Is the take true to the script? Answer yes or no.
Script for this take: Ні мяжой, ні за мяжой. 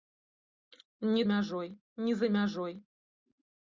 yes